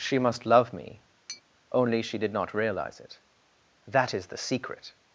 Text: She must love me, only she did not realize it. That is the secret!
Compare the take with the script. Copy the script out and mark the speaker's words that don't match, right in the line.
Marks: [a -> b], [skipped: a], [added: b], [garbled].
She must love me, only she did not realize it. That is the secret!